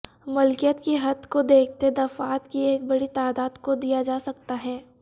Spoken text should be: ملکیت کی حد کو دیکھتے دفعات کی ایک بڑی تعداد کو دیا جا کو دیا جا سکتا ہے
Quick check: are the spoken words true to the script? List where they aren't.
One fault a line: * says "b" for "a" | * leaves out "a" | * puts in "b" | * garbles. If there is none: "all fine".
* leaves out "کو دیا جا"